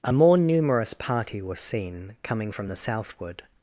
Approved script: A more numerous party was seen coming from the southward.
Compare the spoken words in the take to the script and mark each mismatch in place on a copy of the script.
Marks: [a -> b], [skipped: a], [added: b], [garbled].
A more numerous party was seen coming from the southward.